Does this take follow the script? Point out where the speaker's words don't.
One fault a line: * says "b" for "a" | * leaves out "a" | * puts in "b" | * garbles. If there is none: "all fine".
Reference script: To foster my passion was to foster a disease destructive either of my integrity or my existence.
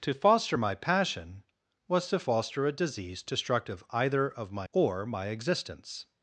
* leaves out "integrity"